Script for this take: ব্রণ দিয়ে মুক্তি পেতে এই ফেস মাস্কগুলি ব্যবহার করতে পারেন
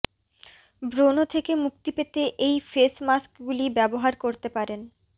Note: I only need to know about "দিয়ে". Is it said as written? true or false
false